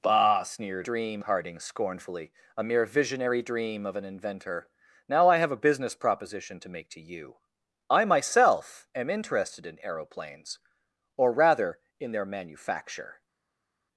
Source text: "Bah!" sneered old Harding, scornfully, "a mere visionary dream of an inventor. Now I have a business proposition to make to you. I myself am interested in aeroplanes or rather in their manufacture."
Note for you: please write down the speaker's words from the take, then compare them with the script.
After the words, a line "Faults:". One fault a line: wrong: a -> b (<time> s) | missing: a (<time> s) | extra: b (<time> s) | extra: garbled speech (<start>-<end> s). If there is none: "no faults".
"Bah!" sneered dream Harding, scornfully, "a mere visionary dream of an inventor. Now I have a business proposition to make to you. I myself am interested in aeroplanes or rather in their manufacture."
Faults:
wrong: old -> dream (0.8 s)